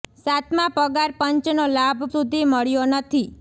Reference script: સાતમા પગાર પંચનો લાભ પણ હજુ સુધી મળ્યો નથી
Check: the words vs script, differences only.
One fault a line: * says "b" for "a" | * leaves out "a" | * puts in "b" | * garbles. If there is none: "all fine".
* leaves out "પણ હજુ"